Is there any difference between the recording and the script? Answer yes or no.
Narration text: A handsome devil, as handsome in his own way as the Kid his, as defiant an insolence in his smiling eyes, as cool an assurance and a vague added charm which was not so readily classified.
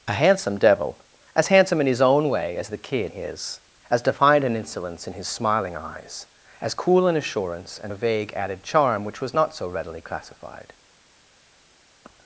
no